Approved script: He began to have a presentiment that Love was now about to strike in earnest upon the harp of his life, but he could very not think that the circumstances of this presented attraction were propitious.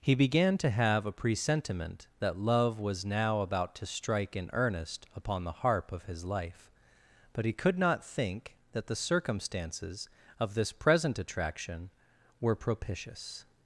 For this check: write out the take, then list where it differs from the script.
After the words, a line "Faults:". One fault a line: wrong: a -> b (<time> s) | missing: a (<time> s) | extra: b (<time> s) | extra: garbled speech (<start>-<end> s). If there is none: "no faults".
He began to have a presentiment that Love was now about to strike in earnest upon the harp of his life, but he could not think that the circumstances of this present attraction were propitious.
Faults:
missing: very (7.8 s)
wrong: presented -> present (10.7 s)